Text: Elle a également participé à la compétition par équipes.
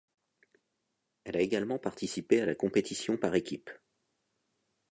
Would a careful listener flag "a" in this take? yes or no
no